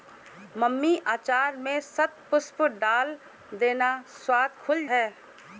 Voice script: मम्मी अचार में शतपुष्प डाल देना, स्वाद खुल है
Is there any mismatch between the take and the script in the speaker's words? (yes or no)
no